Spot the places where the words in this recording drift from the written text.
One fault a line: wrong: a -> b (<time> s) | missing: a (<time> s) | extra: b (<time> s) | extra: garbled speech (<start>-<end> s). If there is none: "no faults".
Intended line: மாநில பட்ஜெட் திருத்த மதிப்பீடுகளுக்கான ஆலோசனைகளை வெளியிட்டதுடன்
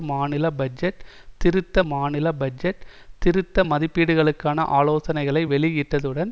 extra: மாநில பட்ஜெட் திருத்த (1.8 s)